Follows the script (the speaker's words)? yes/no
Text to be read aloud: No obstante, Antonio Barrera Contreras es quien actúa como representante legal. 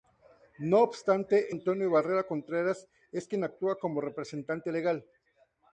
yes